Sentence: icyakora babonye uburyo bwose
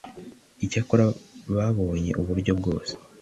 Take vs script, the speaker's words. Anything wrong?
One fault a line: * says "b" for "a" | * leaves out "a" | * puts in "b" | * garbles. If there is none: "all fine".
all fine